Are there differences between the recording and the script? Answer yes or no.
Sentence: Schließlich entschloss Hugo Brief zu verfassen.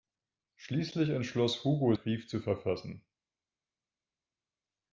no